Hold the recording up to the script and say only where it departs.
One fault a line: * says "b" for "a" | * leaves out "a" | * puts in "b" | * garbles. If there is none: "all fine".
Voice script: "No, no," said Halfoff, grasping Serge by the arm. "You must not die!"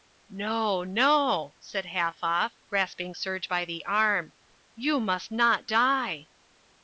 all fine